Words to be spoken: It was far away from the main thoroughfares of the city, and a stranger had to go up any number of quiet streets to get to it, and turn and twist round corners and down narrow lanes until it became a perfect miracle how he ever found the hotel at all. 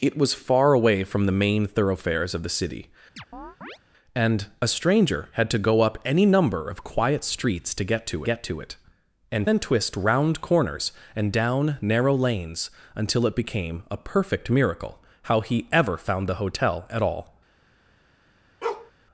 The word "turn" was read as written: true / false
false